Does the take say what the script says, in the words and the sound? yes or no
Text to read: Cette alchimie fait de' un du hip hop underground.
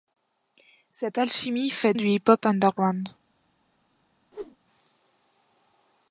no